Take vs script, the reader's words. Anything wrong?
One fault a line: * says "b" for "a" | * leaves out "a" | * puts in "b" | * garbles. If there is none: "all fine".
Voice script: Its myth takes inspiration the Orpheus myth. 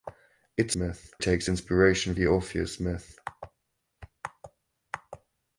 all fine